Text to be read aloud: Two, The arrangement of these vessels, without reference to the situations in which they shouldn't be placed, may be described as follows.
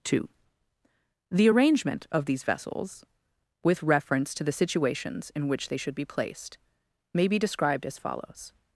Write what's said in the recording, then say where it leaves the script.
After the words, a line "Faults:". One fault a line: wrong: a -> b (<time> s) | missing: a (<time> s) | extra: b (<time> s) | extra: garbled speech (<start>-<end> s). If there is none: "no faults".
Two, The arrangement of these vessels, with reference to the situations in which they should be placed, may be described as follows.
Faults:
wrong: without -> with (3.6 s)
wrong: shouldn't -> should (5.8 s)